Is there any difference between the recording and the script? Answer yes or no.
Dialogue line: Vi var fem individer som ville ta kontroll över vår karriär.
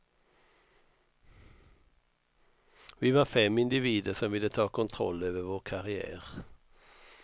no